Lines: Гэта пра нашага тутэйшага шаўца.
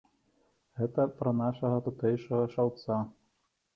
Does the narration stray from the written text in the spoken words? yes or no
no